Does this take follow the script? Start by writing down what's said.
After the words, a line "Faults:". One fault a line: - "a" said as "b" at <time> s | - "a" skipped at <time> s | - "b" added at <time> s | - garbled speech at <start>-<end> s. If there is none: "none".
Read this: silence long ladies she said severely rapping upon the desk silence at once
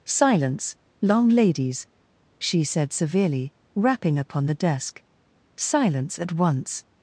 silence long ladies she said severely rapping upon the desk silence at once
Faults:
none